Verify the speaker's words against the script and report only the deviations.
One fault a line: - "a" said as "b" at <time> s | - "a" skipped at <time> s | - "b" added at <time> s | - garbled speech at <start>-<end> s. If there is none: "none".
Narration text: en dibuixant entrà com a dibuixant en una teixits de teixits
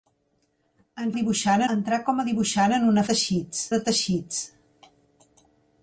none